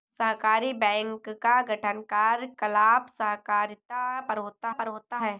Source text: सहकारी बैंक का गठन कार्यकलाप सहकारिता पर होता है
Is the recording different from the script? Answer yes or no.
yes